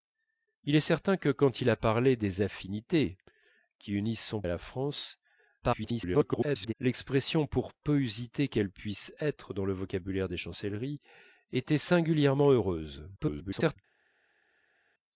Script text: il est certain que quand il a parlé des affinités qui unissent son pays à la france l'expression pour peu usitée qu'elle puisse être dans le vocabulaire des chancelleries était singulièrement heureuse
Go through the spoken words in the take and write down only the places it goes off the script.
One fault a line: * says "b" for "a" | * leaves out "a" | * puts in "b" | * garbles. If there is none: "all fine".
* leaves out "pays"
* garbles
* garbles